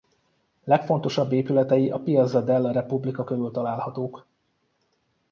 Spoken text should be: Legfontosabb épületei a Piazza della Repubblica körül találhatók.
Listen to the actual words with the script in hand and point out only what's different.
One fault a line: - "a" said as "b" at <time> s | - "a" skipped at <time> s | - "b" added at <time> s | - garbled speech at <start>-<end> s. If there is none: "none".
none